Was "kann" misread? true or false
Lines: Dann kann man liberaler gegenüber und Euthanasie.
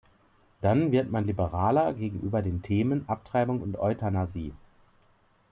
true